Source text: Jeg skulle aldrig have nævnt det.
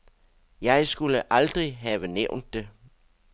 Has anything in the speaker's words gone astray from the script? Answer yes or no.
no